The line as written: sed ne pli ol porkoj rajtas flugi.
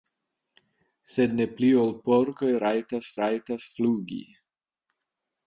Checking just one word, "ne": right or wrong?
right